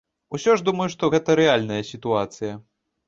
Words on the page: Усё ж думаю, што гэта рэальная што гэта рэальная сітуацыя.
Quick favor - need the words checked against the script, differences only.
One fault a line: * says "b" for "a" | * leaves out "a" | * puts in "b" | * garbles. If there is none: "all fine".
* leaves out "што гэта рэальная"